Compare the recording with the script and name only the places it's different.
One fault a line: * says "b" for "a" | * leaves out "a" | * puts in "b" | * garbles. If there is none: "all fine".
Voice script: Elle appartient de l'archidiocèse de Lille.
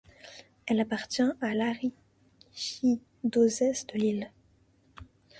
* says "à" for "de"